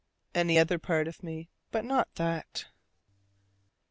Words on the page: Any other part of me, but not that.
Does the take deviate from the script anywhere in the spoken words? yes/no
no